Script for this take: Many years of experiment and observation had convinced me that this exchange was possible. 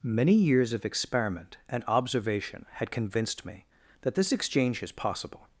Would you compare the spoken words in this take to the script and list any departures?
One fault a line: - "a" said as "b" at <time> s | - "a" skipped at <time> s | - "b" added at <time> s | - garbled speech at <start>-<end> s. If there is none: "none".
- "was" said as "is" at 4.8 s